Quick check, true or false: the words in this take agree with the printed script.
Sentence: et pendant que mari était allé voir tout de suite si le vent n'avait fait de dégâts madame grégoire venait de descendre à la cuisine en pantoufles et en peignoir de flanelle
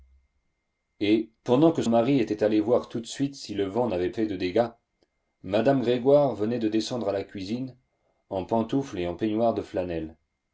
true